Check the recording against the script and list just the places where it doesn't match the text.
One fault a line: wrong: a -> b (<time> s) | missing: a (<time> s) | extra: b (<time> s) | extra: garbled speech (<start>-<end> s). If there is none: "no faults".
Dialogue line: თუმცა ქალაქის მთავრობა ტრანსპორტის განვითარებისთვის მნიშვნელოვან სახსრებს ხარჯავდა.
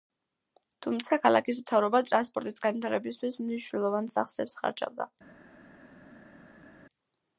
no faults